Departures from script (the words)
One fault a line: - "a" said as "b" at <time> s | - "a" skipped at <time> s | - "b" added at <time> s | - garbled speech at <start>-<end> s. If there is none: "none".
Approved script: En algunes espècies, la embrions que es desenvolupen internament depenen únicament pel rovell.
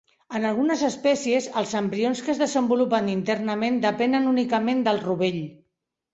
- "la" said as "els" at 1.6 s
- "pel" said as "del" at 4.9 s